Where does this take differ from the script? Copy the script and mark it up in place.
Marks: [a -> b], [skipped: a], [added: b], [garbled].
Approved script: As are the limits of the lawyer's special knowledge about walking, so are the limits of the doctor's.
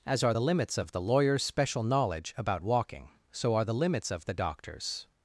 As are the limits of the lawyer's special knowledge about walking, so are the limits of the doctor's.